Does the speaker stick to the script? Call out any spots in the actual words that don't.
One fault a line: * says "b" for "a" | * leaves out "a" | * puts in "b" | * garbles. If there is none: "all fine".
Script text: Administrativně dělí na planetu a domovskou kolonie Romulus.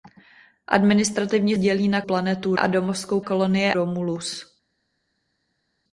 all fine